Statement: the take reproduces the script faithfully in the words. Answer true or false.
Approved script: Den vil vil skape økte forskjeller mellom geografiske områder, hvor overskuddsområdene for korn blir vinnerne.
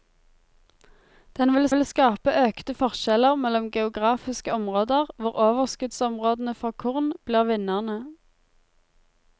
true